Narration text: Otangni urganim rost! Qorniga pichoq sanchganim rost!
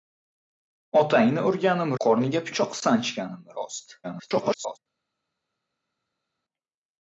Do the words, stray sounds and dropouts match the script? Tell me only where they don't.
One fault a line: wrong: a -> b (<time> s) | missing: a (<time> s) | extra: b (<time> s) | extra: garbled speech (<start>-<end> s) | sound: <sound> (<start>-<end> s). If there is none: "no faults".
missing: rost (1.9 s)
extra: garbled speech (4.0-4.8 s)